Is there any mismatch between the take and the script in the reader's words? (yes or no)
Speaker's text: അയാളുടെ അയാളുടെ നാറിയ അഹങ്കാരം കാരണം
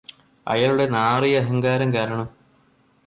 yes